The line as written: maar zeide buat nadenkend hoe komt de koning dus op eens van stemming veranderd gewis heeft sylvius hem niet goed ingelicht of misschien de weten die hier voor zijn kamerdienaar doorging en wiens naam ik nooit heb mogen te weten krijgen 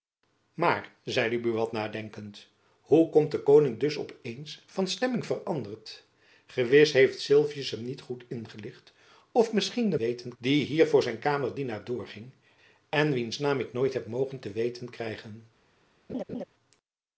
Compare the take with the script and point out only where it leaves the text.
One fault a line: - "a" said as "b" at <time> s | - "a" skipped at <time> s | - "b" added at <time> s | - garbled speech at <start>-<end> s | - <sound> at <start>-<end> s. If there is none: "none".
- laugh at 16.1-16.4 s